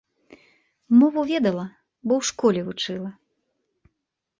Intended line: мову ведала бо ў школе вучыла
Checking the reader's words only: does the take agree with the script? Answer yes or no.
yes